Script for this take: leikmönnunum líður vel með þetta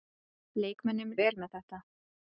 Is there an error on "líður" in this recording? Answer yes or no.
yes